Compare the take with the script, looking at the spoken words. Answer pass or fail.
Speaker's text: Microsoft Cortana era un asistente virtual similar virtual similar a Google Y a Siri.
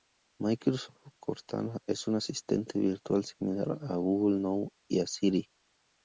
fail